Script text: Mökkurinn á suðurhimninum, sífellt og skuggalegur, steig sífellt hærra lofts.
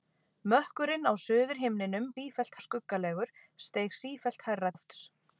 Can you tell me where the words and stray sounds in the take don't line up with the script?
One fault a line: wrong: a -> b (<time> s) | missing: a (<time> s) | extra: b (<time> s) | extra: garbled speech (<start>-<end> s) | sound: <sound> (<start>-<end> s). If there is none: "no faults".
no faults